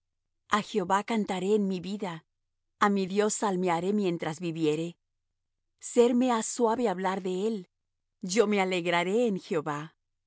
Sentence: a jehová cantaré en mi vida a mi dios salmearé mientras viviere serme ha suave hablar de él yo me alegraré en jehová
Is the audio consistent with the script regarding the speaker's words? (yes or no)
yes